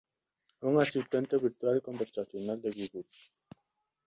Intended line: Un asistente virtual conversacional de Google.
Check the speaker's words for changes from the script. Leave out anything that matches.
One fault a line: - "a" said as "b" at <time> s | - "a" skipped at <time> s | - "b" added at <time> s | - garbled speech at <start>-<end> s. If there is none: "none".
none